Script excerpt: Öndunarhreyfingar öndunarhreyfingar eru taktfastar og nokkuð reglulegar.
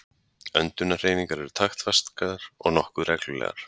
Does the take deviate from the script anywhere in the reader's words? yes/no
yes